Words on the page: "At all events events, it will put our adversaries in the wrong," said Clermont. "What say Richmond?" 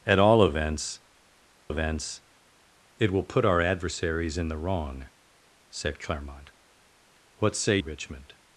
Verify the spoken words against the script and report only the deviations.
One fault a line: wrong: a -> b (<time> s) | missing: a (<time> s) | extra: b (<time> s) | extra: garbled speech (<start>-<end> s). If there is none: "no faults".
no faults